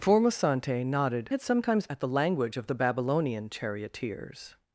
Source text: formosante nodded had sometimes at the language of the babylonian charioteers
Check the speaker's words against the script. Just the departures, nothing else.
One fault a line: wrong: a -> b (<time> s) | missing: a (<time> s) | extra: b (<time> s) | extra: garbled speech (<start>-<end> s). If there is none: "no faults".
no faults